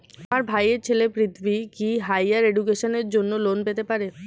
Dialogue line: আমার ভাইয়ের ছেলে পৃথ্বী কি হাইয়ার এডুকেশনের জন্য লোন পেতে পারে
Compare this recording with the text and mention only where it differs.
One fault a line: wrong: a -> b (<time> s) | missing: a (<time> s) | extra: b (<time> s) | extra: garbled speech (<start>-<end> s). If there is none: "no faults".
no faults